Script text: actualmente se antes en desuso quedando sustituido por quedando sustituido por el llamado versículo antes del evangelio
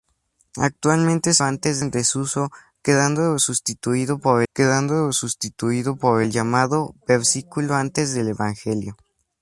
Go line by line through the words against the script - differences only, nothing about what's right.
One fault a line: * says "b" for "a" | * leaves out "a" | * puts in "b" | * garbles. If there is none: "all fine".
all fine